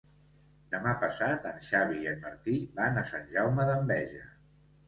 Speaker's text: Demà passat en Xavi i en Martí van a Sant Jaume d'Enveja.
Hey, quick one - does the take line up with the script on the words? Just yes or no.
yes